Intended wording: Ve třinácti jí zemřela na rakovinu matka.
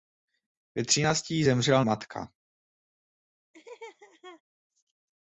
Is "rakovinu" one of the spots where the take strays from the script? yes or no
yes